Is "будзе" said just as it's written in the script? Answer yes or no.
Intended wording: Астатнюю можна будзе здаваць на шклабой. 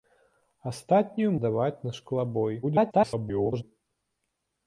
no